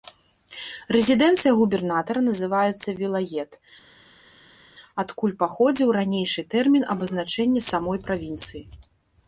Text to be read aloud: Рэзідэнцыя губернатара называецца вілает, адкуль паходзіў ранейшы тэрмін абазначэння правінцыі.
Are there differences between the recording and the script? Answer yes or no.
yes